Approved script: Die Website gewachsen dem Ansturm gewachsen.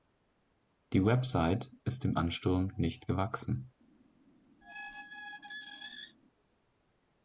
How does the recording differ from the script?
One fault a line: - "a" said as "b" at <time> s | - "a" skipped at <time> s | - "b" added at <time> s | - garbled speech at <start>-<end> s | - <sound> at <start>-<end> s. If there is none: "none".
- "gewachsen" said as "ist" at 1.8 s
- "nicht" added at 2.8 s
- squeak at 4.6-6.2 s